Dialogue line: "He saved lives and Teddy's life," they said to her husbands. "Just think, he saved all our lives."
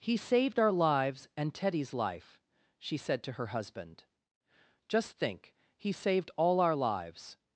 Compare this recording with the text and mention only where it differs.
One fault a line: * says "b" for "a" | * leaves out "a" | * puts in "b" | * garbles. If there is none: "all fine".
* puts in "our"
* says "she" for "they"
* says "husband" for "husbands"